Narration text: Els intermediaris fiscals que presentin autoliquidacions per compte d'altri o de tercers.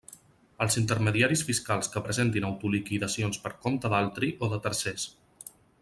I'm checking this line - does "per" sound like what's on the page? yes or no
yes